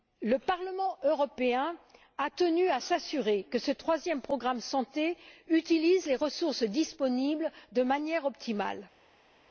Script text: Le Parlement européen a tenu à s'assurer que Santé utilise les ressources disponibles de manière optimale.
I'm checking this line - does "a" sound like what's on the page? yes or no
yes